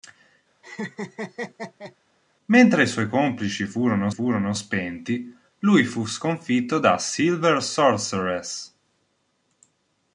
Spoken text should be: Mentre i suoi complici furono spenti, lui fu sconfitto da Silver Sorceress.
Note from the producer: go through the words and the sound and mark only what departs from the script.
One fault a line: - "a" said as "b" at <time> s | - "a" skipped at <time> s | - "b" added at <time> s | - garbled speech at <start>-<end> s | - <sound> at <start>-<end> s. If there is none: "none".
- laugh at 0.6-2.0 s
- "furono" added at 4.1 s